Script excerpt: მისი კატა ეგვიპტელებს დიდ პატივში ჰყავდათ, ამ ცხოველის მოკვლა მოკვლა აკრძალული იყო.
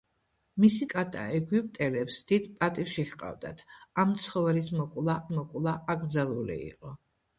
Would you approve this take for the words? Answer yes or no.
yes